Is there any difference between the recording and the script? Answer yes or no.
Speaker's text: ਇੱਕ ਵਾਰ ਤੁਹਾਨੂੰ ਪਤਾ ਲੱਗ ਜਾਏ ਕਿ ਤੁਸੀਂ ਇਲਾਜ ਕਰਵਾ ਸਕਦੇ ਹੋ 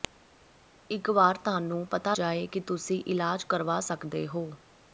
yes